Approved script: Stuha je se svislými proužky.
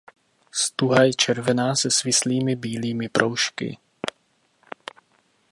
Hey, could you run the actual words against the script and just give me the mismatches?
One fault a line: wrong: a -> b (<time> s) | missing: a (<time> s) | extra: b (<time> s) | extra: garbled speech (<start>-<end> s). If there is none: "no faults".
extra: červená (1.1 s)
extra: bílými (2.5 s)